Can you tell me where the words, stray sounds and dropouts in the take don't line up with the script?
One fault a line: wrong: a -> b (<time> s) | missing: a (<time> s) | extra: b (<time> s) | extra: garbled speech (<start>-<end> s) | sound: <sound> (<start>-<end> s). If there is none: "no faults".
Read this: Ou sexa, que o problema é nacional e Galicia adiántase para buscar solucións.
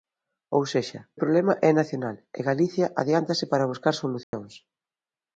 missing: que (1.0 s)
sound: dropout (4.2-4.3 s)